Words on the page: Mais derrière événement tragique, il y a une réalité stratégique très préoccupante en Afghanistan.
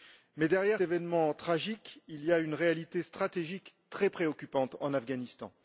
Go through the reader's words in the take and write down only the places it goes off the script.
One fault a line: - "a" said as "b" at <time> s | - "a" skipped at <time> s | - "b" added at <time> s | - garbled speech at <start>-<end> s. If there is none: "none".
none